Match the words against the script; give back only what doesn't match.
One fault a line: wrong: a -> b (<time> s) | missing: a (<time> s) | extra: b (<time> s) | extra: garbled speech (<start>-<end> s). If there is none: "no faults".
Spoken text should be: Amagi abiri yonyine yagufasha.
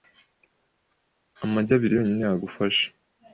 no faults